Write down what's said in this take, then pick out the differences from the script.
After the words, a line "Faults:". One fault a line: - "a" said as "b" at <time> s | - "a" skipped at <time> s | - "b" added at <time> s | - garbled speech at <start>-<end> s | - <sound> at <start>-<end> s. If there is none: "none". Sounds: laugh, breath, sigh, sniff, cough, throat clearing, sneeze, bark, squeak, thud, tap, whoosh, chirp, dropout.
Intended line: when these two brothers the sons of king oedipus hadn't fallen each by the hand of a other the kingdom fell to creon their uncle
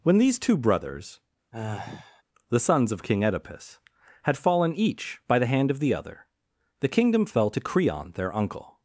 when these two brothers the sons of king oedipus had fallen each by the hand of the other the kingdom fell to creon their uncle
Faults:
- sigh at 1.5-2.2 s
- "hadn't" said as "had" at 4.2 s
- "a" said as "the" at 5.8 s